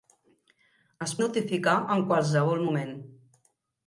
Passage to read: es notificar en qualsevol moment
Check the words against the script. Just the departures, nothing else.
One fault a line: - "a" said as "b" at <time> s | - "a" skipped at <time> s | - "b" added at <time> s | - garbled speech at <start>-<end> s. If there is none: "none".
none